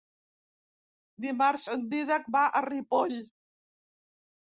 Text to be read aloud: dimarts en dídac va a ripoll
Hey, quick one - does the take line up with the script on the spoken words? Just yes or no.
yes